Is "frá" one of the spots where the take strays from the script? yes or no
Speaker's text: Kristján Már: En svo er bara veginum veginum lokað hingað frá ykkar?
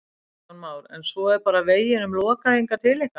yes